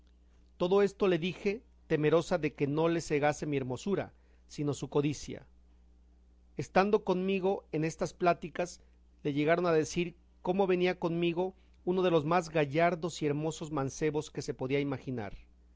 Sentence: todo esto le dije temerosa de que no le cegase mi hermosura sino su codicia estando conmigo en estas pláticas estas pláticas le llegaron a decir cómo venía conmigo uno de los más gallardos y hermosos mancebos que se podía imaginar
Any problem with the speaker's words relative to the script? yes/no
yes